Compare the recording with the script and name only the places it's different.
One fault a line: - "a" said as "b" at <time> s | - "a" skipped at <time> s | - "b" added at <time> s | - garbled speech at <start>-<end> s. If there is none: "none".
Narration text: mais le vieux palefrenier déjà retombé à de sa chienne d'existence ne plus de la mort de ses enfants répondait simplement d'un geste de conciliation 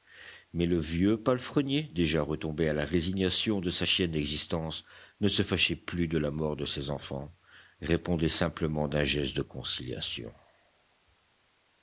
- "la résignation" added at 2.7 s
- "se fâchait" added at 5.3 s